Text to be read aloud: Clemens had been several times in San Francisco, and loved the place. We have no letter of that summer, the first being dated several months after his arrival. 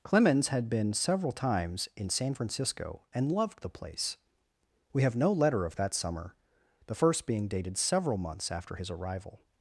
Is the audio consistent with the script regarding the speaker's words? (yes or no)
yes